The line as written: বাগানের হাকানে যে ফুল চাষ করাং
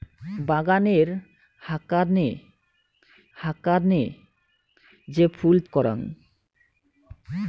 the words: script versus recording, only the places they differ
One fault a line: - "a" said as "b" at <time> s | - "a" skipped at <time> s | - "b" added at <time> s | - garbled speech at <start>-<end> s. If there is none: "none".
- "হাকানে" added at 3.4 s
- "চাষ" skipped at 5.6 s